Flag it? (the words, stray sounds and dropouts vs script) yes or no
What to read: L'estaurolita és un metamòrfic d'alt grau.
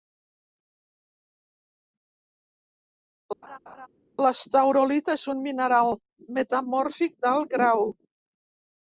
yes